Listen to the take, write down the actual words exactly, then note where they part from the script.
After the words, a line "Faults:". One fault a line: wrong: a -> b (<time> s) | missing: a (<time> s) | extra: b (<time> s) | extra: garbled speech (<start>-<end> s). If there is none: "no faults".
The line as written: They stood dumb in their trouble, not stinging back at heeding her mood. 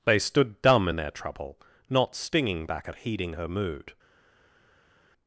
They stood dumb in their trouble, not stinging back at heeding her mood.
Faults:
no faults